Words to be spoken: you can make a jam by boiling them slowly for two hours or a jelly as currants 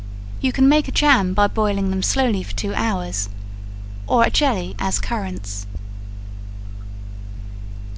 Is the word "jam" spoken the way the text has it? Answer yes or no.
yes